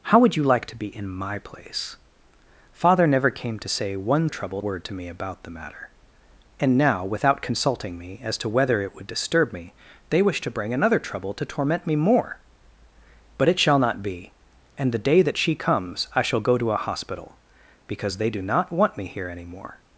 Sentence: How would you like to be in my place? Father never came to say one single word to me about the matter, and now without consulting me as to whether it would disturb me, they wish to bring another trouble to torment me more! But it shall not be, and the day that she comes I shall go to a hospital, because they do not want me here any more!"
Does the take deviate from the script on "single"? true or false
true